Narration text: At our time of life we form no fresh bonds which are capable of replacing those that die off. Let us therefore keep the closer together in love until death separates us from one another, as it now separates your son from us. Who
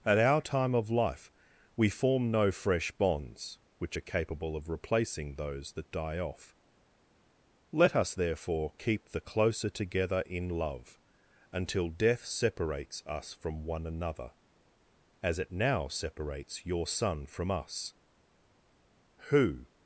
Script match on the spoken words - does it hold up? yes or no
yes